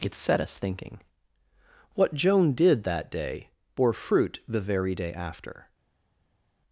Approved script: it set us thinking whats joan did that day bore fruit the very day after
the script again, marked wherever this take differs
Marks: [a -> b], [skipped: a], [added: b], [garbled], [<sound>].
it set us thinking [whats -> what] joan did that day bore fruit the very day after